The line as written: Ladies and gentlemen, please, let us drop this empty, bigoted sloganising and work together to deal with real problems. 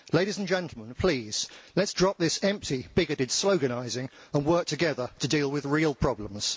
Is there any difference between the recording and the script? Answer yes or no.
no